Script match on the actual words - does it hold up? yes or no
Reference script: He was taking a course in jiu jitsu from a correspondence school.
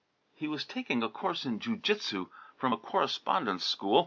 yes